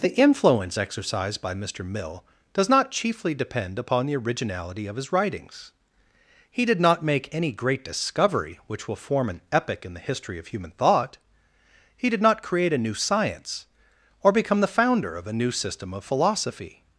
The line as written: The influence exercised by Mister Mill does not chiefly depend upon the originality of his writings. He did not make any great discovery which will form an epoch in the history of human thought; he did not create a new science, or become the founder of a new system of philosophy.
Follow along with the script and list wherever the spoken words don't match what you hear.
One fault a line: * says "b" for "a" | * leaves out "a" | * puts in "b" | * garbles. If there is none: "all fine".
all fine